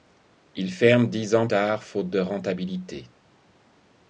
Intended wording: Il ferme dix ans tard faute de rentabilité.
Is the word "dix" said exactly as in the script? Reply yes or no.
yes